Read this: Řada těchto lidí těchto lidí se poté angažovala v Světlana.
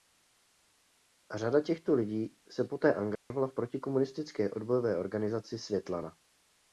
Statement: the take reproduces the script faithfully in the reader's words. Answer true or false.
false